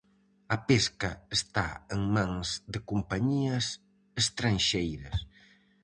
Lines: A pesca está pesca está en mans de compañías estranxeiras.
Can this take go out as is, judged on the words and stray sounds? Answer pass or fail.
fail